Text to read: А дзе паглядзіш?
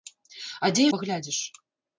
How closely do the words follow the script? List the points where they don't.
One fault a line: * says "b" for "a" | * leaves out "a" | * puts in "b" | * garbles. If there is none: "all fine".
all fine